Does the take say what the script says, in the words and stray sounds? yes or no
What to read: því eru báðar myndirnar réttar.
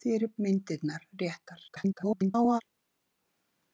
no